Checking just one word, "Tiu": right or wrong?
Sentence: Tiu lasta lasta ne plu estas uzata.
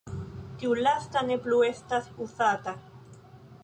right